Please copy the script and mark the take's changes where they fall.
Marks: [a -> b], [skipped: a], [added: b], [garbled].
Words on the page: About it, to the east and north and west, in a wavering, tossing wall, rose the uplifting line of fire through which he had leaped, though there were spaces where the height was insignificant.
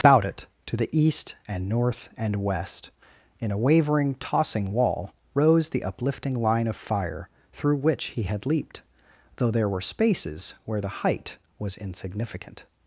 About it, to the east and north and west, in a wavering, tossing wall, rose the uplifting line of fire through which he had leaped, though there were spaces where the height was insignificant.